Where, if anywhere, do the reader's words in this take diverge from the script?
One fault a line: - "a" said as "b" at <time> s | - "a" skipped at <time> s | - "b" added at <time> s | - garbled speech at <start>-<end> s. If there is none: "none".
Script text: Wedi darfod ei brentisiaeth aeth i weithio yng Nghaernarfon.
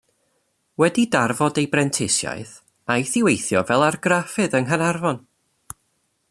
- "fel argraffydd" added at 3.7 s